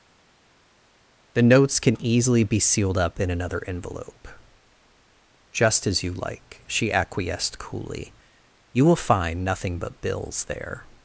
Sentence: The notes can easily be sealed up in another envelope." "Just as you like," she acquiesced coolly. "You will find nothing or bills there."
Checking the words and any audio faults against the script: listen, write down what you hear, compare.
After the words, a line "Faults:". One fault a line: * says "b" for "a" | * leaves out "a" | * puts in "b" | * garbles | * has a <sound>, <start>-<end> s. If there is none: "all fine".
The notes can easily be sealed up in another envelope." "Just as you like," she acquiesced coolly. "You will find nothing but bills there."
Faults:
* says "but" for "or"